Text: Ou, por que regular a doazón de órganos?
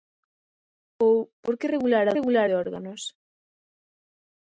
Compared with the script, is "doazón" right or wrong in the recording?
wrong